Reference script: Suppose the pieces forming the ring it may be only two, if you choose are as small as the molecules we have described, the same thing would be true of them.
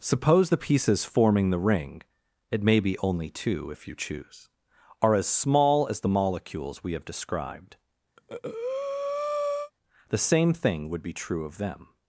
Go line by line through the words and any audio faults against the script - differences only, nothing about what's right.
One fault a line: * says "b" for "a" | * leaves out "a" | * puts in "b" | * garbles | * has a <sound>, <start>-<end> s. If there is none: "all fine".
* has a breath, 8.2-9.7 s